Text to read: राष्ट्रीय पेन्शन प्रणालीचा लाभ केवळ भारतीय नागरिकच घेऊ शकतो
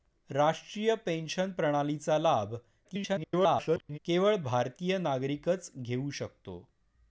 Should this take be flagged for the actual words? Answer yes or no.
yes